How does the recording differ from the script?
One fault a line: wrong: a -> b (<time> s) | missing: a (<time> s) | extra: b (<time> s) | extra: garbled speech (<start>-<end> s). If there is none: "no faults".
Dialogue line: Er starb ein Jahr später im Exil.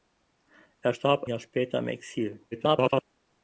missing: ein (1.2 s)
extra: garbled speech (2.5-3.0 s)